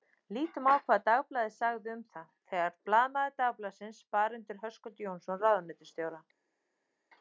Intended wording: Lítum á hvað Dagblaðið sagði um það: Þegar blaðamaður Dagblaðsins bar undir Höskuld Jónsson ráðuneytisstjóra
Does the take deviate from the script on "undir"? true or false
false